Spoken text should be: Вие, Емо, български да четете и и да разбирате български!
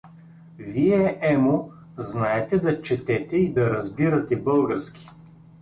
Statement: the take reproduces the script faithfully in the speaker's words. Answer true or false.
false